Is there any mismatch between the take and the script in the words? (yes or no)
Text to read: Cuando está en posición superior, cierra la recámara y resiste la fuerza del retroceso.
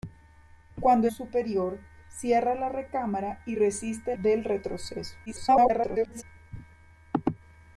yes